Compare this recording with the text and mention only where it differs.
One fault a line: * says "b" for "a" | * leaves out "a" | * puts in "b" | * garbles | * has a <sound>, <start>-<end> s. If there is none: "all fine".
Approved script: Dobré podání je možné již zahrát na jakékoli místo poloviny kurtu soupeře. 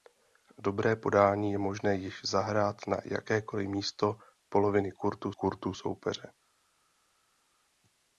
* puts in "kurtu"